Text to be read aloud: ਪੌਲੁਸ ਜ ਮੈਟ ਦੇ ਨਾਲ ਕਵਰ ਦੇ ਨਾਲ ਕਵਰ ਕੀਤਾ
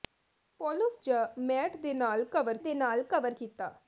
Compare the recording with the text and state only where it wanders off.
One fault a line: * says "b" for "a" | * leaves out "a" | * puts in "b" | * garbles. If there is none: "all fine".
all fine